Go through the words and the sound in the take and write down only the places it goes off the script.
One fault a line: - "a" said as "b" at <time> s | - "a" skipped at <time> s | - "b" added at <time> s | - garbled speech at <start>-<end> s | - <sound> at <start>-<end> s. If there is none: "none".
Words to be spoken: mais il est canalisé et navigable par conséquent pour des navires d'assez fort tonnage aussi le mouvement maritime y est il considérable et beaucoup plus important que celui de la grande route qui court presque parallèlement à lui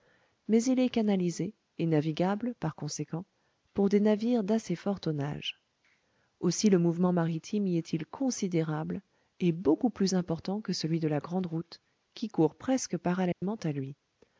- dropout at 13.3-13.4 s